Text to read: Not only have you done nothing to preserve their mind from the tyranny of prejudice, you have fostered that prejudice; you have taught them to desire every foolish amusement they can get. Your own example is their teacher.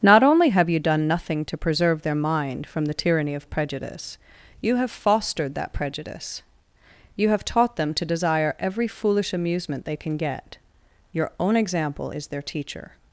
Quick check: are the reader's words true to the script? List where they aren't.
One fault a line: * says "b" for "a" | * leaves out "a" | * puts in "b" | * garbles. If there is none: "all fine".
all fine